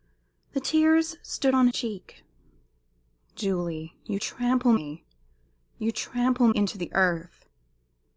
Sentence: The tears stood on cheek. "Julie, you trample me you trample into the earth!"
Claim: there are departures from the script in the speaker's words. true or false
false